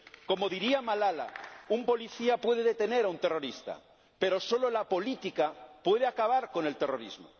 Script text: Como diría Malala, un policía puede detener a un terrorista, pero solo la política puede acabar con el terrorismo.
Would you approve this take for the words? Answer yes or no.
yes